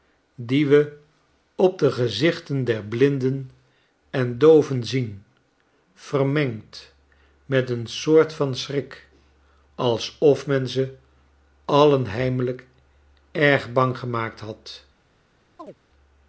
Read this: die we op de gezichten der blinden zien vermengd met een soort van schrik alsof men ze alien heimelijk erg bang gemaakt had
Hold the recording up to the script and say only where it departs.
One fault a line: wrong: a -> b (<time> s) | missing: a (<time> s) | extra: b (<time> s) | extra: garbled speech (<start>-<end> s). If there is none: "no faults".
extra: en dooven (4.1 s)